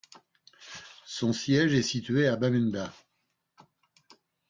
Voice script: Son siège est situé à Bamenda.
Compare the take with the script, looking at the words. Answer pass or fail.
pass